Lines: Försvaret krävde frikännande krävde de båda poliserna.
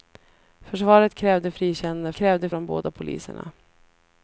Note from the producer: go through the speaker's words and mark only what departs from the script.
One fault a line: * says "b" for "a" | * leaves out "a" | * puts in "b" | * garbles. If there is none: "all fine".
all fine